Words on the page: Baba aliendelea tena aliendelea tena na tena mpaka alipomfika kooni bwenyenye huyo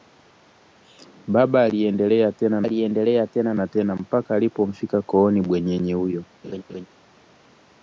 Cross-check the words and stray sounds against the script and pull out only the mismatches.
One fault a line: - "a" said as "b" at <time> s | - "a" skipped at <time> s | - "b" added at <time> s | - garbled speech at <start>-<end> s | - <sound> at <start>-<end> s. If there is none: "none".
- laugh at 6.4-6.9 s